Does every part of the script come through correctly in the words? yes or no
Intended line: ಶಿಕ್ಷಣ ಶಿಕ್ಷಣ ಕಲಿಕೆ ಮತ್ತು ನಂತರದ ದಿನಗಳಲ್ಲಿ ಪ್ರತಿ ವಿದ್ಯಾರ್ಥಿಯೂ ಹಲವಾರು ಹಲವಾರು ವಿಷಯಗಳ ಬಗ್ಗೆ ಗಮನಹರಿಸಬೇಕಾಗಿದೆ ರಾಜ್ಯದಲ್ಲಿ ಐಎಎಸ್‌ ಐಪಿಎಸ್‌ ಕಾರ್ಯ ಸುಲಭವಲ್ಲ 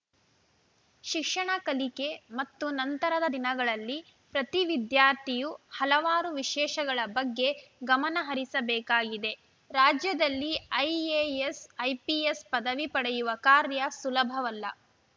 no